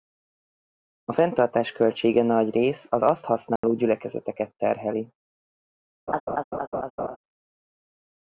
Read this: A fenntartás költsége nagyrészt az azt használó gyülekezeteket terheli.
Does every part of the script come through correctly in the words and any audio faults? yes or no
no